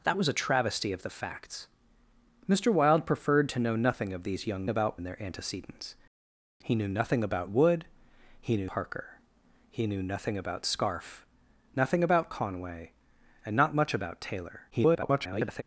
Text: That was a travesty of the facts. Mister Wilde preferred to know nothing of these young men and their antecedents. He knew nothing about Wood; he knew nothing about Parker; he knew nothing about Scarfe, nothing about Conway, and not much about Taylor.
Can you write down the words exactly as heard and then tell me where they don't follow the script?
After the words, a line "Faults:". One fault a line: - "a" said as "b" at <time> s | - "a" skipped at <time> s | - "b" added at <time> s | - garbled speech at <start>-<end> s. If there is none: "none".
That was a travesty of the facts. Mister Wilde preferred to know nothing of these young about and their antecedents. He knew nothing about Wood; he knew Parker; he knew nothing about Scarfe, nothing about Conway, and not much about Taylor. [garbled]
Faults:
- "men" said as "about" at 4.7 s
- "nothing about" skipped at 8.7 s
- garbled speech at 14.7-15.6 s